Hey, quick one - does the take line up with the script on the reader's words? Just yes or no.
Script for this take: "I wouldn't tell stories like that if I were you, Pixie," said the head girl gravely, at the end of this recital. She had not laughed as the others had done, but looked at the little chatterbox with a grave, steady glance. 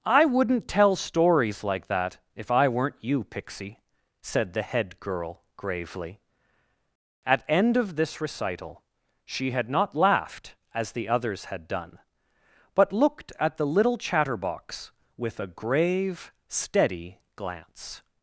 no